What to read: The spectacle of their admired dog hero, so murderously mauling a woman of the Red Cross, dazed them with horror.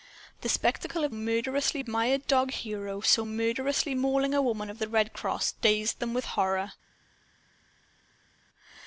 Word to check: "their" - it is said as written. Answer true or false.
false